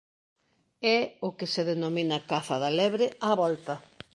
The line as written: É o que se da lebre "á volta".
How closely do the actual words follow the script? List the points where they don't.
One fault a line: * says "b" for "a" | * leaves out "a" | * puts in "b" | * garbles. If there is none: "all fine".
* puts in "denomina caza"